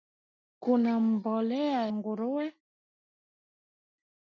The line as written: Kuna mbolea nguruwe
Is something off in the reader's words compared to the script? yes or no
no